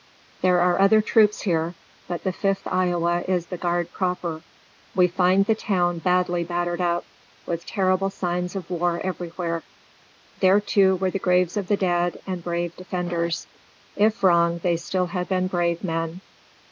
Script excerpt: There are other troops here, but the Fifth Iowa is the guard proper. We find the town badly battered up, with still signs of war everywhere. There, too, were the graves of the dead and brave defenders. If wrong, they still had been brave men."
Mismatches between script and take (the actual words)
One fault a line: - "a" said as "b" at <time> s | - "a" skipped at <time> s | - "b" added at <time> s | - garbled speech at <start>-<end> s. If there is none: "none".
- "still" said as "terrible" at 7.7 s